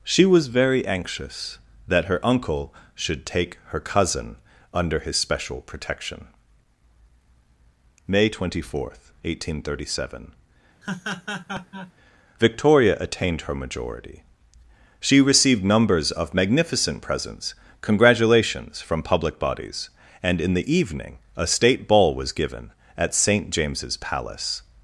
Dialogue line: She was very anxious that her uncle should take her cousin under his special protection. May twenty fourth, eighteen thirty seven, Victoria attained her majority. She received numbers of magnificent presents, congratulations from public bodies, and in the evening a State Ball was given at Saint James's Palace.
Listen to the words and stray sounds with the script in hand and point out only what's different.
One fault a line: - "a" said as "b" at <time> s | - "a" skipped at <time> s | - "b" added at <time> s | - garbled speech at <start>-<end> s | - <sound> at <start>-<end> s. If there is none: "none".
- laugh at 10.8-11.9 s